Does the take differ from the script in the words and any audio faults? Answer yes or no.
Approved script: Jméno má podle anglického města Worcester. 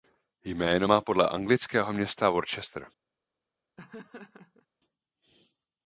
yes